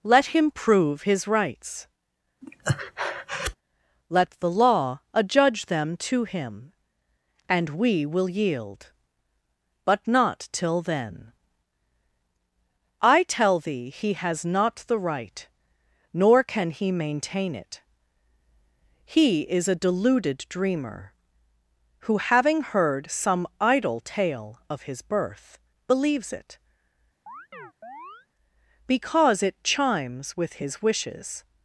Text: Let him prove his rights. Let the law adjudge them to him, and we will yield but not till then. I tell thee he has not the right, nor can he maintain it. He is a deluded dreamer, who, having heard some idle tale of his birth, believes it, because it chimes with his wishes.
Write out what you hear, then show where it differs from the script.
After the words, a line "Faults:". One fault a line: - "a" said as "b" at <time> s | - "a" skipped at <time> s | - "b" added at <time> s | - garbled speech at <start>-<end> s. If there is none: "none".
Let him prove his rights. Let the law adjudge them to him, and we will yield but not till then. I tell thee he has not the right, nor can he maintain it. He is a deluded dreamer, who, having heard some idle tale of his birth, believes it, because it chimes with his wishes.
Faults:
none